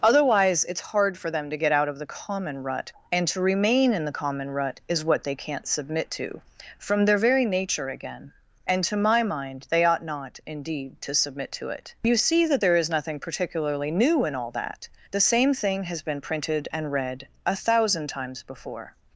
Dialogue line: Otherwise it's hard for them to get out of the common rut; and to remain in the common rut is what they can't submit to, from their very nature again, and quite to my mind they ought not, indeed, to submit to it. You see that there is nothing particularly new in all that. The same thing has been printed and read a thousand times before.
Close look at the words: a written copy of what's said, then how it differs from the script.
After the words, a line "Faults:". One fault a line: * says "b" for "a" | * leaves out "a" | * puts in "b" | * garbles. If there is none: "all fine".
Otherwise it's hard for them to get out of the common rut; and to remain in the common rut is what they can't submit to, from their very nature again, and to my mind they ought not, indeed, to submit to it. You see that there is nothing particularly new in all that. The same thing has been printed and read a thousand times before.
Faults:
* leaves out "quite"